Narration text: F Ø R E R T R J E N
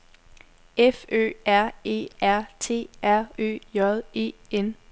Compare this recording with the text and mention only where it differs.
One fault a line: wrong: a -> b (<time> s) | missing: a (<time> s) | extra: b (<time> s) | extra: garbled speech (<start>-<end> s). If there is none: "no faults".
extra: Ø (3.4 s)